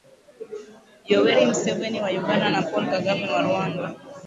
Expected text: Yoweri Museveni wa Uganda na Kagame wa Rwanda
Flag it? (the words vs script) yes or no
yes